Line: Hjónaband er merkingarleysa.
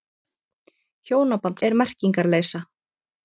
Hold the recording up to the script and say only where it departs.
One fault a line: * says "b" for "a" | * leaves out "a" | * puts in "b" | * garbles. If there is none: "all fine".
all fine